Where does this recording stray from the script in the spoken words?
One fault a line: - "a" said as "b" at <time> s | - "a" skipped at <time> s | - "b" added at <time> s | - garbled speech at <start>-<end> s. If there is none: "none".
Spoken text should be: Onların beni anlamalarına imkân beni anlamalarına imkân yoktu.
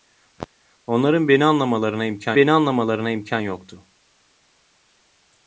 none